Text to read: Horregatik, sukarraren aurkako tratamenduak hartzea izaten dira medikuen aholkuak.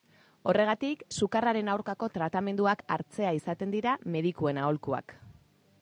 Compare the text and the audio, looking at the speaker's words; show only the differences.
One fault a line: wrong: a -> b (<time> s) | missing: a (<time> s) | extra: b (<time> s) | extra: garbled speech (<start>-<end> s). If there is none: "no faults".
no faults